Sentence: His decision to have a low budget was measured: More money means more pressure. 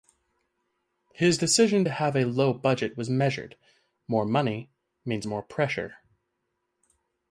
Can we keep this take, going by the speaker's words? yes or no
yes